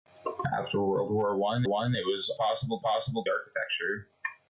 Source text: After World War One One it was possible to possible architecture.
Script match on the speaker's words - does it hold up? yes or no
yes